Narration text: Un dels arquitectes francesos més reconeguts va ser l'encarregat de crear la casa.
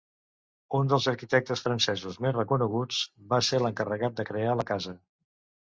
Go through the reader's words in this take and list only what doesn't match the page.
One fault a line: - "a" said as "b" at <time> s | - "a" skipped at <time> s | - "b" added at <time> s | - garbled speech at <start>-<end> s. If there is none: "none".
none